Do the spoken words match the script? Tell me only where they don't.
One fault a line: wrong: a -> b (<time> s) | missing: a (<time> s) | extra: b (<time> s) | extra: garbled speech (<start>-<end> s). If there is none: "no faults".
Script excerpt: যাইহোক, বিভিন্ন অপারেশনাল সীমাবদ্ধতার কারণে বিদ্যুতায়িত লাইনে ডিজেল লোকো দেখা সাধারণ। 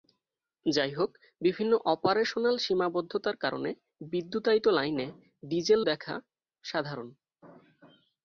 missing: লোকো (5.8 s)